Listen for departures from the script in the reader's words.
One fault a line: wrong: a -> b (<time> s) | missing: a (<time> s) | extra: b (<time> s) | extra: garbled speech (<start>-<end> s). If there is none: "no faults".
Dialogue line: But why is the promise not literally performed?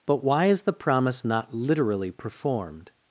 no faults